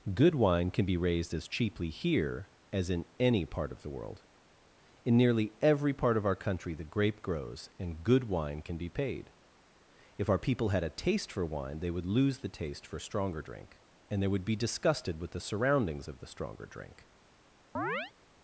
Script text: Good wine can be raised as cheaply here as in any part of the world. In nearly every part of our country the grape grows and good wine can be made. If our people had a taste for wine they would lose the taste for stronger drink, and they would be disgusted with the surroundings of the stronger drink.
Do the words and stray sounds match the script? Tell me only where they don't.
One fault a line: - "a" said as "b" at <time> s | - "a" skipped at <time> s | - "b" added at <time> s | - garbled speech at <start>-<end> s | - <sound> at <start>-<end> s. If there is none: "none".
- "made" said as "paid" at 8.9 s
- chirp at 17.7-18.1 s